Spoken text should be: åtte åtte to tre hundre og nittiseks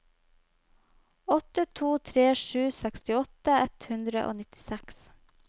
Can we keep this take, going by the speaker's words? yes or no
no